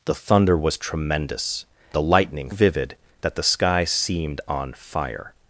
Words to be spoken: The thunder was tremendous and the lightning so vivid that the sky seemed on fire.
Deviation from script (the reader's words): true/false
true